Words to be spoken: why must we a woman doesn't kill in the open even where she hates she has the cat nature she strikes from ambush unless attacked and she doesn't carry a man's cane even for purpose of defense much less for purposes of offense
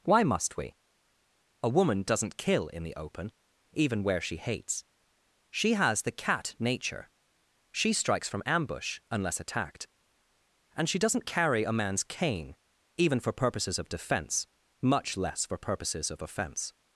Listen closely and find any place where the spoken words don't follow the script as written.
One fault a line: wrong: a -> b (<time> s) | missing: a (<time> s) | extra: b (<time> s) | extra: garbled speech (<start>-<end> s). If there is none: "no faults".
wrong: purpose -> purposes (13.3 s)